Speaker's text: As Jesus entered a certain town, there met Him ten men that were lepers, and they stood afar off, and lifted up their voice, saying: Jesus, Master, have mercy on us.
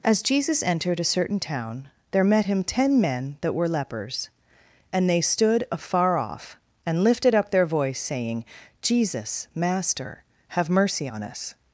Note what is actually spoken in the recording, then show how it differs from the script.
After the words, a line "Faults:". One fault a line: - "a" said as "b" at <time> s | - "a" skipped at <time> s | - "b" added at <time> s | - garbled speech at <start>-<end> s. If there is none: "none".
As Jesus entered a certain town, there met Him ten men that were lepers, and they stood afar off, and lifted up their voice, saying: Jesus, Master, have mercy on us.
Faults:
none